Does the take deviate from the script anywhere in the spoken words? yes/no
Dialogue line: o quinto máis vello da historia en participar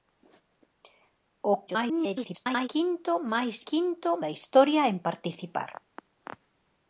yes